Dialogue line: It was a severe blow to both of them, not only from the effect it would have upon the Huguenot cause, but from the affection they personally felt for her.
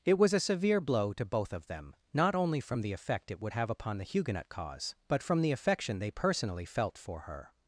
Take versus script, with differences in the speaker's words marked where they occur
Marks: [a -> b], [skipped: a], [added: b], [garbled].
It was a severe blow to both of them, not only from the effect it would have upon the Huguenot cause, but from the affection they personally felt for her.